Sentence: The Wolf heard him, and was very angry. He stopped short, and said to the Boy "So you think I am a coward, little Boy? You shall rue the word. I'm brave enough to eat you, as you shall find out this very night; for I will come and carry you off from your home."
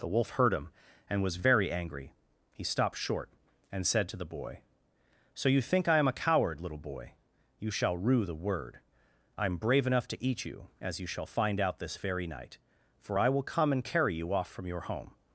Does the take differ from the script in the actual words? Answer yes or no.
no